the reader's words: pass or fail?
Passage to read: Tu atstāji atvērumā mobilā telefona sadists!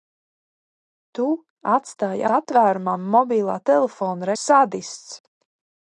pass